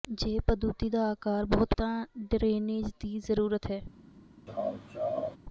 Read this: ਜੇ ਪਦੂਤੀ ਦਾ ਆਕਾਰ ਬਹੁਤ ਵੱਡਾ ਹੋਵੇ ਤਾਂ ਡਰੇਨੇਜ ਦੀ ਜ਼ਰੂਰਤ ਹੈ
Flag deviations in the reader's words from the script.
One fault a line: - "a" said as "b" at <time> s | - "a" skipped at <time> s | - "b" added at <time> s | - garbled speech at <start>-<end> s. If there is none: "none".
- "ਵੱਡਾ ਹੋਵੇ" skipped at 1.8 s